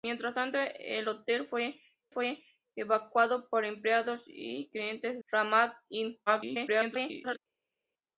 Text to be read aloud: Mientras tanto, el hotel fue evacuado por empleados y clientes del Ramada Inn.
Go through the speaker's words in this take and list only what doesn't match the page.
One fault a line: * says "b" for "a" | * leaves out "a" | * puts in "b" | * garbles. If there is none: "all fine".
* puts in "fue"
* leaves out "del"
* garbles